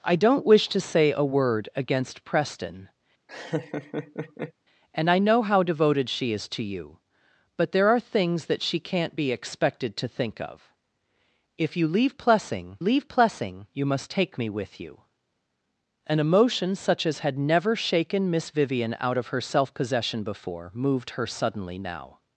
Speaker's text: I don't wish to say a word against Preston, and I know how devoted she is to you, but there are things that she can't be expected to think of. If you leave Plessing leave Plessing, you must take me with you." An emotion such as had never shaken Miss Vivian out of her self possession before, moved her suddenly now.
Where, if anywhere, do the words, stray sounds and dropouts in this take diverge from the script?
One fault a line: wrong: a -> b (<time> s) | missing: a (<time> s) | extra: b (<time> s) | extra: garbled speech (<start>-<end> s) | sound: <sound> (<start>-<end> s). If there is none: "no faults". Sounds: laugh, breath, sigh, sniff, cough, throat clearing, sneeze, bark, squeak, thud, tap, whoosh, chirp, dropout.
sound: laugh (3.3-4.5 s)